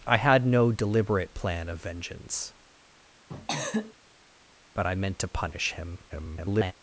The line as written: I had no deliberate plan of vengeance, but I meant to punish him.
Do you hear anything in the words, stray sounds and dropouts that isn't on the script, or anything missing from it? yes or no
yes